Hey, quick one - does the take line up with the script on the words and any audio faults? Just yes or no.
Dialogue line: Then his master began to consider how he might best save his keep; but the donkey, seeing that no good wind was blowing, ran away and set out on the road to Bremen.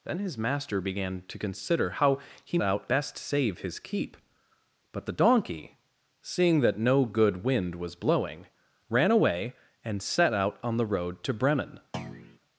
no